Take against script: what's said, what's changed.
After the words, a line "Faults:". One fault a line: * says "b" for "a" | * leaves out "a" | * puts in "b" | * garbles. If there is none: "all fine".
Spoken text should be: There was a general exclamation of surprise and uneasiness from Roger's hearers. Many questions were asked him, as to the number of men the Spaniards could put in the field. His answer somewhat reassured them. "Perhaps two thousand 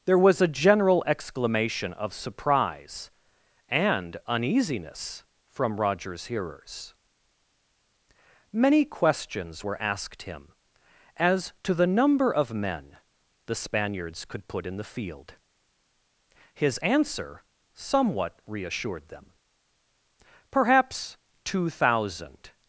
There was a general exclamation of surprise and uneasiness from Roger's hearers. Many questions were asked him, as to the number of men the Spaniards could put in the field. His answer somewhat reassured them. "Perhaps two thousand
Faults:
all fine